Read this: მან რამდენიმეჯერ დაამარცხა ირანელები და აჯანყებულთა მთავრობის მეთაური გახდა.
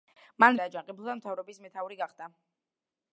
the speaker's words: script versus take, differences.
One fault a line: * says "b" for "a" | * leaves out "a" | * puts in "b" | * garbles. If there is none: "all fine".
* leaves out "რამდენიმეჯერ დაამარცხა ირანელები"